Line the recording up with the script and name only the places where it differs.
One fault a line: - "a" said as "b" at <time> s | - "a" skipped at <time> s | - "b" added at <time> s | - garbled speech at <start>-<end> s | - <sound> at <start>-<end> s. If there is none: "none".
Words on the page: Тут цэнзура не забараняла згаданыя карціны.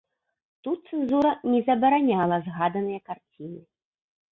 none